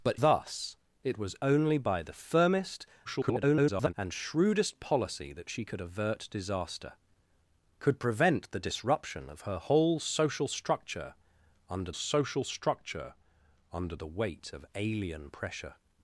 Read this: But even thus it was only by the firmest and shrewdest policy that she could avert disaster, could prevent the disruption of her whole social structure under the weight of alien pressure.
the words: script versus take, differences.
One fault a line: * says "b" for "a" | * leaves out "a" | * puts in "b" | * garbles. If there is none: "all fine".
* leaves out "even"
* garbles
* puts in "social structure under"